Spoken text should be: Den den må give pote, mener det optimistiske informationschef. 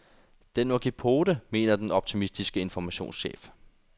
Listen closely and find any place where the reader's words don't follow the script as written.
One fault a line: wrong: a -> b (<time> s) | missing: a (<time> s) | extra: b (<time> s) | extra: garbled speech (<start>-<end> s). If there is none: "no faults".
missing: den (0.7 s)
wrong: det -> den (1.8 s)